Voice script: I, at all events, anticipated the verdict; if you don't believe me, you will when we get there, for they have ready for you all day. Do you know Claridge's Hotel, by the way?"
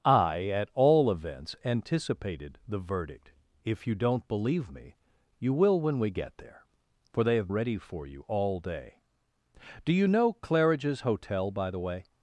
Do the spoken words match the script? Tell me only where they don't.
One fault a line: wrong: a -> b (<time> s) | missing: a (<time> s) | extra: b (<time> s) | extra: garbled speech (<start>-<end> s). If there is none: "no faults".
no faults